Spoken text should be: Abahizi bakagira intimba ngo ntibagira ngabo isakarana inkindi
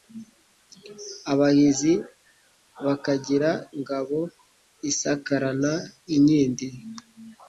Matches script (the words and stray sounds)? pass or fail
fail